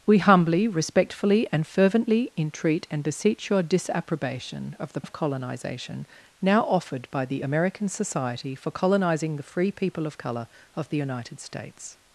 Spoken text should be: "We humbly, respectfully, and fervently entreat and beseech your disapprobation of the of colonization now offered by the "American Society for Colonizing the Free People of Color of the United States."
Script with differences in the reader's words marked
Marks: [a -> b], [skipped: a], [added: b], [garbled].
"We humbly, respectfully, and fervently entreat and beseech your disapprobation of the of colonization now offered by the "American Society for Colonizing the Free People of Color of the United States."